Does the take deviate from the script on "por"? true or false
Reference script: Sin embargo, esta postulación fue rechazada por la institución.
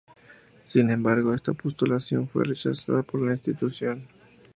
false